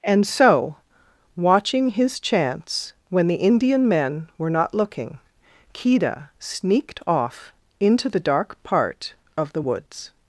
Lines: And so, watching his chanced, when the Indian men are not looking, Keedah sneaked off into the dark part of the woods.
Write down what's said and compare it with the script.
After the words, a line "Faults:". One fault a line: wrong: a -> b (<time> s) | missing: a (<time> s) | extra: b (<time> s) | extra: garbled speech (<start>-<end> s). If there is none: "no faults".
And so, watching his chance, when the Indian men were not looking, Keedah sneaked off into the dark part of the woods.
Faults:
wrong: chanced -> chance (2.2 s)
wrong: are -> were (4.4 s)